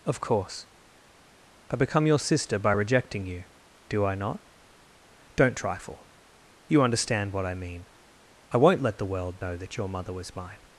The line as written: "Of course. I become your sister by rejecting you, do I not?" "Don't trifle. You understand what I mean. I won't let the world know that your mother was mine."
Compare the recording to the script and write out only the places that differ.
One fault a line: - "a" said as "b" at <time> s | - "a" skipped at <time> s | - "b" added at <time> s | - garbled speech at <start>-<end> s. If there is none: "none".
none